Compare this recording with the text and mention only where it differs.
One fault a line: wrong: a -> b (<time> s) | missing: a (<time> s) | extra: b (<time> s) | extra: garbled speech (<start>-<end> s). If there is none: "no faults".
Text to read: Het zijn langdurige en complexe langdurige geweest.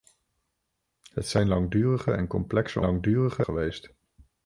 no faults